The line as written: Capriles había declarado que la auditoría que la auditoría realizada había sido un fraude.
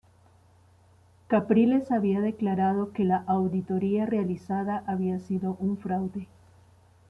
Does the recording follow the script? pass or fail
fail